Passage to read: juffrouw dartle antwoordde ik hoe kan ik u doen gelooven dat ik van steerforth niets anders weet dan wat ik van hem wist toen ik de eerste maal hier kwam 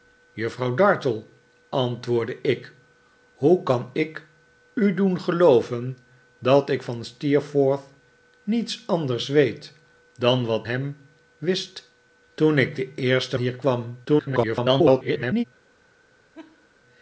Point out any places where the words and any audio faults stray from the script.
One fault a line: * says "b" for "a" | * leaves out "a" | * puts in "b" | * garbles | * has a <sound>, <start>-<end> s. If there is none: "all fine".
* leaves out "ik van"
* leaves out "maal"
* garbles
* has a laugh, 16.3-16.7 s